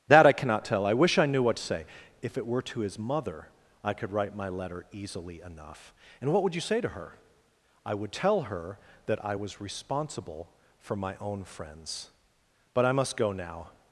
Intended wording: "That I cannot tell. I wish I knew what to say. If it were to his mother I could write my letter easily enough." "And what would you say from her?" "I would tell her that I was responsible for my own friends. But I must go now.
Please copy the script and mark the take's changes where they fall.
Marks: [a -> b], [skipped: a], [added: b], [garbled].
"That I cannot tell. I wish I knew what to say. If it were to his mother I could write my letter easily enough." "And what would you say [from -> to] her?" "I would tell her that I was responsible for my own friends. But I must go now.